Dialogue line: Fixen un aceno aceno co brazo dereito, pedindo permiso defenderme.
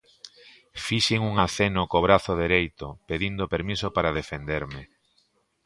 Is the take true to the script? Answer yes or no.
no